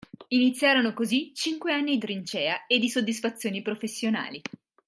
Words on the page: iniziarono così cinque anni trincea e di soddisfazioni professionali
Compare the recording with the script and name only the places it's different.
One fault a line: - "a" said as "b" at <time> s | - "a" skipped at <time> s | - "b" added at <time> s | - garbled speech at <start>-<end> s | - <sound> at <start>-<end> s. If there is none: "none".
none